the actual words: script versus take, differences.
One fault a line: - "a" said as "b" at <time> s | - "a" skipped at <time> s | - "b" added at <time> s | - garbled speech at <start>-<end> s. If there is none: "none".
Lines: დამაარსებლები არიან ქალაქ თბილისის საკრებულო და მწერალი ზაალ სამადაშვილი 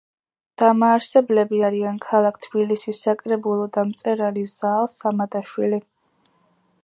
none